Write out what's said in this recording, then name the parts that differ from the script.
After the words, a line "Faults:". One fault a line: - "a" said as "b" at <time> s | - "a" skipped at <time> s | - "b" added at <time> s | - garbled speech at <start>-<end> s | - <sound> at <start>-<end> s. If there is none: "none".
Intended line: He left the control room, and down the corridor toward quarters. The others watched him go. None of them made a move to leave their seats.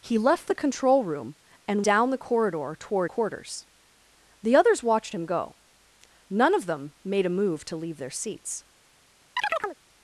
He left the control room, and down the corridor toward quarters. The others watched him go. None of them made a move to leave their seats.
Faults:
- chirp at 9.4-9.8 s